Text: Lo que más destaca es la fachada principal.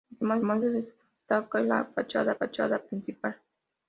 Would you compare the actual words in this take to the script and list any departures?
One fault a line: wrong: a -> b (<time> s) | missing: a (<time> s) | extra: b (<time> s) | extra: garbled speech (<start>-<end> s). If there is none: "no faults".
extra: más (0.4 s)
extra: fachada (2.4 s)